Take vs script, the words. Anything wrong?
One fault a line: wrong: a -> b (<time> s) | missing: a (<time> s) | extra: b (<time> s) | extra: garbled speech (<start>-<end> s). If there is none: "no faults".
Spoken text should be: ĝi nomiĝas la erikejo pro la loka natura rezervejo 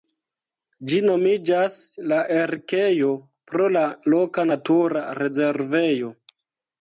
no faults